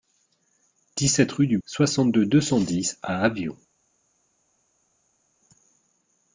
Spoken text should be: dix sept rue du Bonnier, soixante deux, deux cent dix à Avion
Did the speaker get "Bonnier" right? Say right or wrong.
wrong